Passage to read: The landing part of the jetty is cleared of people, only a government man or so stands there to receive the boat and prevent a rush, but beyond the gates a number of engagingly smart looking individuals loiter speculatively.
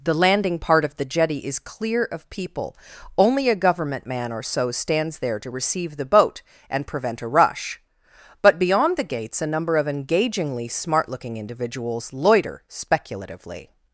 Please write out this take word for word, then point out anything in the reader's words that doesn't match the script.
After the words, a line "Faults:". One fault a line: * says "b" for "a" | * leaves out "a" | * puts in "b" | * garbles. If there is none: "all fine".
The landing part of the jetty is clear of people, only a government man or so stands there to receive the boat and prevent a rush, but beyond the gates a number of engagingly smart looking individuals loiter speculatively.
Faults:
* says "clear" for "cleared"